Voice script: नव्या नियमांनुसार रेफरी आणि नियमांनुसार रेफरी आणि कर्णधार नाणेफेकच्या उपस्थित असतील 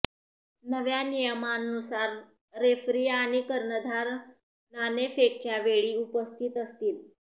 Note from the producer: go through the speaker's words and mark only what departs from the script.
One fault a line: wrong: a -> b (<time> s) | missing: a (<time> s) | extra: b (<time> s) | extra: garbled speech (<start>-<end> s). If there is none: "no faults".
missing: नियमांनुसार रेफरी आणि (3.4 s)
extra: वेळी (5.6 s)